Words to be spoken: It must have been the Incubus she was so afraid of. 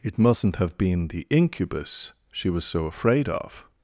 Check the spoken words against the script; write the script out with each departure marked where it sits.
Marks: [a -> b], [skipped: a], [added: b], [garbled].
It [must -> mustn't] have been the Incubus she was so afraid of.